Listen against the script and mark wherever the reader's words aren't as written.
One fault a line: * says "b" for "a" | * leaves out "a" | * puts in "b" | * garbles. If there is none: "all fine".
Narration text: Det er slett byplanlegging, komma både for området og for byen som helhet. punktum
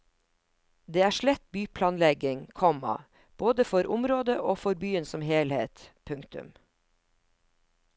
all fine